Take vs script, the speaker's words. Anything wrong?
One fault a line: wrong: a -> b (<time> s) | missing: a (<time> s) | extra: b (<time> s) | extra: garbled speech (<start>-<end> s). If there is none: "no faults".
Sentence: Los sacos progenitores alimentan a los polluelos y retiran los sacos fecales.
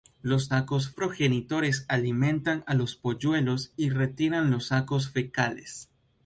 no faults